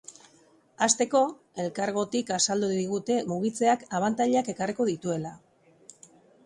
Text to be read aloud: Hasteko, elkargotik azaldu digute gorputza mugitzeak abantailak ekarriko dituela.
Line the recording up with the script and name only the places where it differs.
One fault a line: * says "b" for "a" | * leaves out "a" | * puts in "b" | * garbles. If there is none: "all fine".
* leaves out "gorputza"